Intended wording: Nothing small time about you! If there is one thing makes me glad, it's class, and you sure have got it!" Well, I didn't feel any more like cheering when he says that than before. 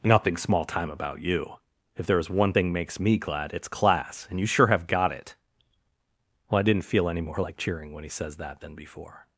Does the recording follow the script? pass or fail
pass